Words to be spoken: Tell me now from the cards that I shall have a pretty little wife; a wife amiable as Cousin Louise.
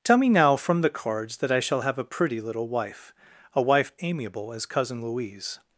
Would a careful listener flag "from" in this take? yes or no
no